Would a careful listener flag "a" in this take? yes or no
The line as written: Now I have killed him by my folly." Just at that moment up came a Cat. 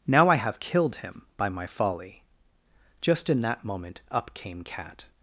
yes